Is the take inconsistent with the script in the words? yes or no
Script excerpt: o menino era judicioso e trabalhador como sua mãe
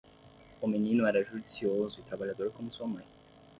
no